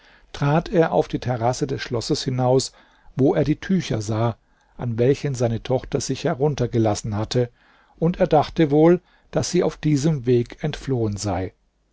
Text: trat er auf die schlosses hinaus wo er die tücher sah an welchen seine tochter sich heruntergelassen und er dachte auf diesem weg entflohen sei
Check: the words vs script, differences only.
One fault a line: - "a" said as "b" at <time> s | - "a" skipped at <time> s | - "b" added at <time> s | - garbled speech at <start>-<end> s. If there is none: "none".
- "terrasse des" added at 1.2 s
- "hatte" added at 7.2 s
- "wohl daß sie" added at 8.7 s